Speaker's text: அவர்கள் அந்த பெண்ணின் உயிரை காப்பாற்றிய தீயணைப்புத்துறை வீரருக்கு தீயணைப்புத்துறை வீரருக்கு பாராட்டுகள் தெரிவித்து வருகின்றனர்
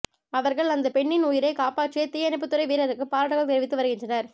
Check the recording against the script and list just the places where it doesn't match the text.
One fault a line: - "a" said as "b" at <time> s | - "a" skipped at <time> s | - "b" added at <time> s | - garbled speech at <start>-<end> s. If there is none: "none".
- "தீயணைப்புத்துறை வீரருக்கு" skipped at 3.1 s